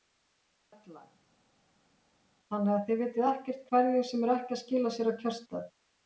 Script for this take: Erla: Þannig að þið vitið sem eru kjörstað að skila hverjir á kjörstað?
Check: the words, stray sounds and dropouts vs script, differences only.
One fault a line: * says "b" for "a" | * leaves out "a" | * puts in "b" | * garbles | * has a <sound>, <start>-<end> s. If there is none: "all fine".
* puts in "ekkert hverjir"
* says "ekki" for "kjörstað"
* says "sér" for "hverjir"